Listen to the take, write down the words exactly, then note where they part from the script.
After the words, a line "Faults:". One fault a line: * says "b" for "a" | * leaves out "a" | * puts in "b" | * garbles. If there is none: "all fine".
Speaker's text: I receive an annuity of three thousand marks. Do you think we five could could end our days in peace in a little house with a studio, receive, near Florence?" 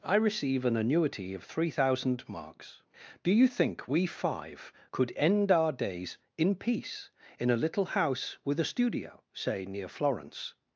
I receive an annuity of three thousand marks. Do you think we five could end our days in peace in a little house with a studio, say, near Florence?"
Faults:
* leaves out "could"
* says "say" for "receive"